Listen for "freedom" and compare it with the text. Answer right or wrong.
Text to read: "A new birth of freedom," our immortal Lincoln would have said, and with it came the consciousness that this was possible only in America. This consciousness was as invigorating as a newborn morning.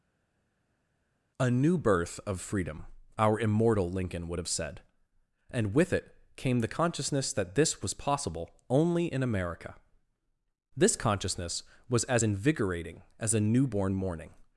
right